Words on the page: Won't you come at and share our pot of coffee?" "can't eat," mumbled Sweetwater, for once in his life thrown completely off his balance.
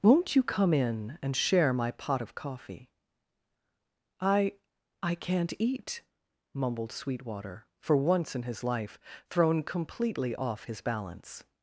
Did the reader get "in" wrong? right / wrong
right